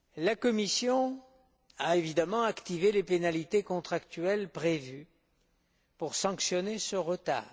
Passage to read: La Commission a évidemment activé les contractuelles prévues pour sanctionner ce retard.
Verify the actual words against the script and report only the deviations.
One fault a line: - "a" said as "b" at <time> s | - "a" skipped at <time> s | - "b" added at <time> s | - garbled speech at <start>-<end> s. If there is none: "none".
- "pénalités" added at 3.0 s